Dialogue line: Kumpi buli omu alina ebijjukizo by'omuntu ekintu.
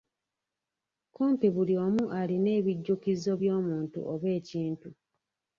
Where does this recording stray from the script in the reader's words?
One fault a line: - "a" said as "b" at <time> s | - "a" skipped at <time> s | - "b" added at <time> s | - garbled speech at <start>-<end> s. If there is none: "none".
- "oba" added at 4.1 s